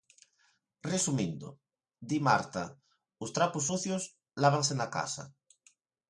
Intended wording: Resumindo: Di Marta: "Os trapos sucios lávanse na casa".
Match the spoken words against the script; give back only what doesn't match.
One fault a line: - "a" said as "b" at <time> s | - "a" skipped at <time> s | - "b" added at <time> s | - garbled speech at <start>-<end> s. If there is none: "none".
none